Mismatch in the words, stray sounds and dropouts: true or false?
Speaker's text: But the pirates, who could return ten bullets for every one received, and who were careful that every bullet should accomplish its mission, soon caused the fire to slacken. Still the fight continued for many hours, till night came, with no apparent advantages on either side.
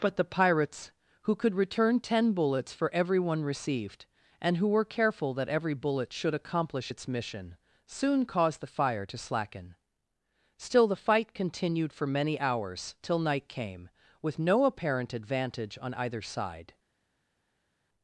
true